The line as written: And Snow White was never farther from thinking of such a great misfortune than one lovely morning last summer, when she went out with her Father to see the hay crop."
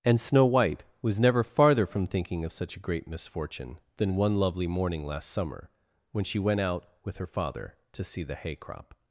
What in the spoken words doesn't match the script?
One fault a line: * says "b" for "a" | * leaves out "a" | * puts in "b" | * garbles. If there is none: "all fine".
all fine